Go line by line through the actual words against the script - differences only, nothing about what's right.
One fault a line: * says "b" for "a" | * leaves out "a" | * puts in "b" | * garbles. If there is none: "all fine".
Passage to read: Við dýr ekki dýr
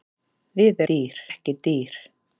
all fine